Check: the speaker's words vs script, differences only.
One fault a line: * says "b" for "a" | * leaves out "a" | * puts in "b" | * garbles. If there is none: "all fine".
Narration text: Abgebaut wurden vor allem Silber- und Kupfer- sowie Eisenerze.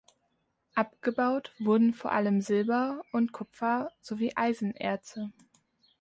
all fine